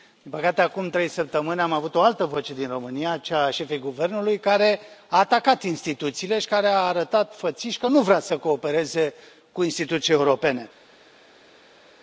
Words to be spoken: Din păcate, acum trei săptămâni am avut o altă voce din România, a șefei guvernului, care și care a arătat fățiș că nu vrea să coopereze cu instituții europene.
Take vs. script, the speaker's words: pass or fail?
fail